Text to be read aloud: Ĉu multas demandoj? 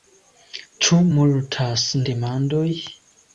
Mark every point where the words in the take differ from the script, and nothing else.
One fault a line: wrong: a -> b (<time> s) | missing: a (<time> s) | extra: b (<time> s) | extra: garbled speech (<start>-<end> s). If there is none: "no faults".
no faults